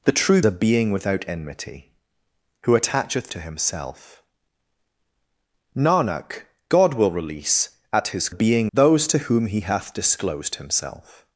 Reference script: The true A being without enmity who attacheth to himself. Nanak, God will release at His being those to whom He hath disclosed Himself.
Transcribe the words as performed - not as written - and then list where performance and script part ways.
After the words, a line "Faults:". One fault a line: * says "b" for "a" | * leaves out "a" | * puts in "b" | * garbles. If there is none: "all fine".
The true A being without enmity who attacheth to himself. Nanak, God will release at His being those to whom He hath disclosed Himself.
Faults:
all fine